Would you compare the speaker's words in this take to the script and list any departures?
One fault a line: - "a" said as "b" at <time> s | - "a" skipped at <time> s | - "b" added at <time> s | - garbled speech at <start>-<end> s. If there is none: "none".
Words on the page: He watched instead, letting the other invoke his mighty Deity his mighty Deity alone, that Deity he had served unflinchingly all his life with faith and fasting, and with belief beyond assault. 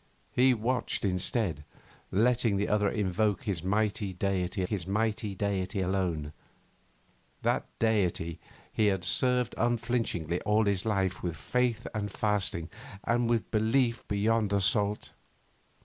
none